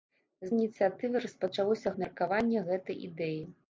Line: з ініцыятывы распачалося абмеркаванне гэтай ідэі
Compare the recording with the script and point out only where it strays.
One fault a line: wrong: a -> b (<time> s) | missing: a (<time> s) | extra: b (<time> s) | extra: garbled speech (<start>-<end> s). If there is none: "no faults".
no faults